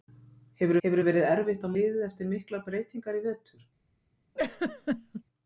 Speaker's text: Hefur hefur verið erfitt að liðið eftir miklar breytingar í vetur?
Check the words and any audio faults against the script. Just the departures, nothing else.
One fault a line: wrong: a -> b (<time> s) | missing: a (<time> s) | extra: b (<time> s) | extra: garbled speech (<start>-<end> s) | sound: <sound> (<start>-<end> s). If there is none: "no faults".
sound: laugh (4.4-5.2 s)